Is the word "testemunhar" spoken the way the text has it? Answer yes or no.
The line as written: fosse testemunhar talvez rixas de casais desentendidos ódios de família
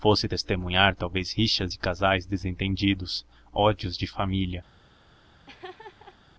yes